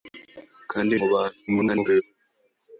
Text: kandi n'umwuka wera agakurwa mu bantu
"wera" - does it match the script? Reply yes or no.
no